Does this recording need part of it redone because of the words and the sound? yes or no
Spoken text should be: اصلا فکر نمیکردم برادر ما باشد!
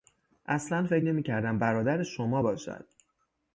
yes